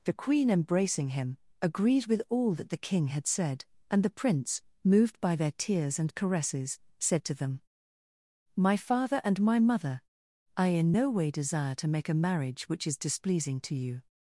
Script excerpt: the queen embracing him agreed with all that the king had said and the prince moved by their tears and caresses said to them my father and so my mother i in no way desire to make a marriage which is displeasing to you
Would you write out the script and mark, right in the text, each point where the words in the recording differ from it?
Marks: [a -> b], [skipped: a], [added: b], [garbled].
the queen embracing him agreed with all that the king had said and the prince moved by their tears and caresses said to them my father and [skipped: so] my mother i in no way desire to make a marriage which is displeasing to you